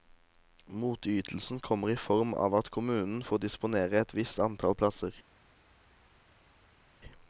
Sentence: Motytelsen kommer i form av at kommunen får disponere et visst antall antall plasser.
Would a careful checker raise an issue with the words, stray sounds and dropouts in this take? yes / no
yes